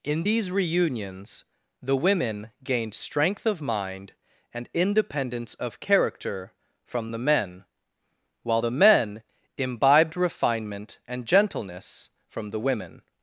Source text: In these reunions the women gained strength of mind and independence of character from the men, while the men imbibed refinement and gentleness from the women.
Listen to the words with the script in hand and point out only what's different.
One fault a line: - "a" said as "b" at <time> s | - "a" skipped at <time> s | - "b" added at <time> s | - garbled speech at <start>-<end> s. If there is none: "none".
none